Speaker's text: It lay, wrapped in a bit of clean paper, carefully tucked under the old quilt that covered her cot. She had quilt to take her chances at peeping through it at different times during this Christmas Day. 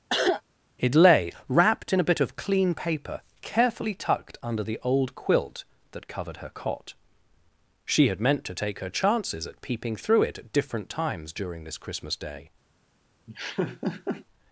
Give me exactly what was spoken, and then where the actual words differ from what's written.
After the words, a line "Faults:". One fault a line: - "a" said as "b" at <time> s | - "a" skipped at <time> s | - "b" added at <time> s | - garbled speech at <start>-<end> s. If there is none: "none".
It lay, wrapped in a bit of clean paper, carefully tucked under the old quilt that covered her cot. She had meant to take her chances at peeping through it at different times during this Christmas Day.
Faults:
- "quilt" said as "meant" at 8.2 s